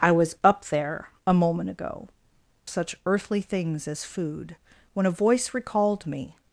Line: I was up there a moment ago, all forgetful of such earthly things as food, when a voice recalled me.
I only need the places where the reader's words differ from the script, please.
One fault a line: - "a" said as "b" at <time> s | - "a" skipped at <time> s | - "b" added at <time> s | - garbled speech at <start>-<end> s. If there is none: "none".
- "all forgetful of" skipped at 2.1 s